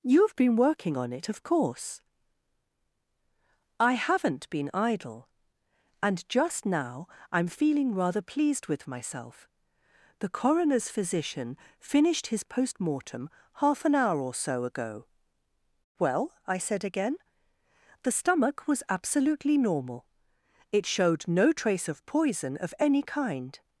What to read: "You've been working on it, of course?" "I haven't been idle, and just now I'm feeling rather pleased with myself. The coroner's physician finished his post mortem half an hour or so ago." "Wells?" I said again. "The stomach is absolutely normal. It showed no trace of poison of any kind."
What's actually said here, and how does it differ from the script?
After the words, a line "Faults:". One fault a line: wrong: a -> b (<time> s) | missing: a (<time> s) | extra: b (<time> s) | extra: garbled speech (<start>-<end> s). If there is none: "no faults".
"You've been working on it, of course?" "I haven't been idle, and just now I'm feeling rather pleased with myself. The coroner's physician finished his post mortem half an hour or so ago." "Well?" I said again. "The stomach was absolutely normal. It showed no trace of poison of any kind."
Faults:
wrong: Wells -> Well (16.0 s)
wrong: is -> was (18.7 s)